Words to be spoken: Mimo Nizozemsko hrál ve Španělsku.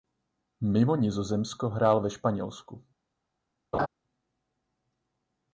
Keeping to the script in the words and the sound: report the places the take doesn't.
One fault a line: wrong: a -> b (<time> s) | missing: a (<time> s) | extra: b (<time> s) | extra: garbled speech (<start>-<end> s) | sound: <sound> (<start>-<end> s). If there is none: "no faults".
sound: laugh (3.7-3.9 s)